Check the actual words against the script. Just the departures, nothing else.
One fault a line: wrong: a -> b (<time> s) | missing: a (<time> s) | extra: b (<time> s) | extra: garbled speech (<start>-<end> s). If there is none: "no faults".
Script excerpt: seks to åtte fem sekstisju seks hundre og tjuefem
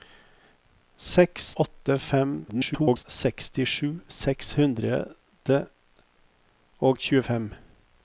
missing: to (1.6 s)
extra: garbled speech (2.5-3.0 s)